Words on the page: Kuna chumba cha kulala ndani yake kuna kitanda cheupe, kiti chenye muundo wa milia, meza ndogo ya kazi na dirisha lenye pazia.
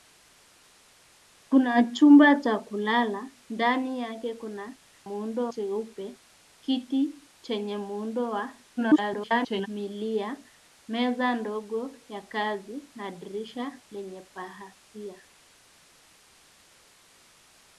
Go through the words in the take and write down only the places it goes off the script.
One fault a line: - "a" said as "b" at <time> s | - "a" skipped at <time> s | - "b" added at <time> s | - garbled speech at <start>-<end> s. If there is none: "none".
- "kitanda" said as "muundo" at 5.1 s
- garbled speech at 8.8-9.7 s